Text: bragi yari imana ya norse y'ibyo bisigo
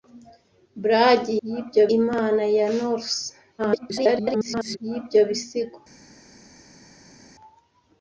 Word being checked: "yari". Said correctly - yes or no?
no